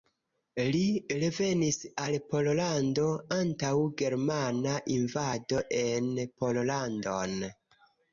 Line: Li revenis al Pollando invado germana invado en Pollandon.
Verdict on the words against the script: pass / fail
fail